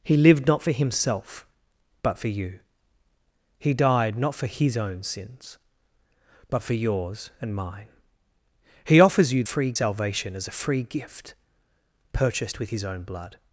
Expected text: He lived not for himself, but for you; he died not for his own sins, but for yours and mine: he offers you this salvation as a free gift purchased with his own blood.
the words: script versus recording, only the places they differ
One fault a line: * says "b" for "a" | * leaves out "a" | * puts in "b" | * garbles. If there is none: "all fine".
* says "free" for "this"